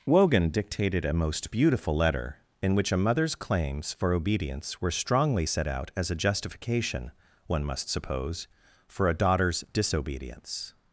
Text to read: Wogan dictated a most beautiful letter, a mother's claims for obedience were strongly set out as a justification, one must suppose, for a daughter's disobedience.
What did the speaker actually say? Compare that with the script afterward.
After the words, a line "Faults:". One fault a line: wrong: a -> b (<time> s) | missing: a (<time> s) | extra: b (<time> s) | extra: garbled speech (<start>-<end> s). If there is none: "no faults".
Wogan dictated a most beautiful letter, in which a mother's claims for obedience were strongly set out as a justification, one must suppose, for a daughter's disobedience.
Faults:
extra: in which (2.6 s)